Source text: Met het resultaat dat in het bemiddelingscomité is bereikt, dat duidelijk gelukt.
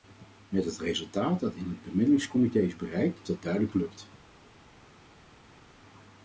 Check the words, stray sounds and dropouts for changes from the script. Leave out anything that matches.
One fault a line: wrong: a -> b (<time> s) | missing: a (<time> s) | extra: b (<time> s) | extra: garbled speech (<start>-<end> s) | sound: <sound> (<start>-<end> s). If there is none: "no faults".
no faults